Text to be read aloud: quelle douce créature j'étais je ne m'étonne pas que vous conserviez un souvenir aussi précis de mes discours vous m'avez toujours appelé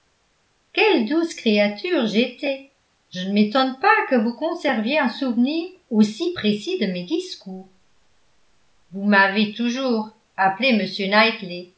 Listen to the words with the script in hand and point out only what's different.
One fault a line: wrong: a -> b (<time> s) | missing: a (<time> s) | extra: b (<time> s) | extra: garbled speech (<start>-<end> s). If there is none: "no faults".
no faults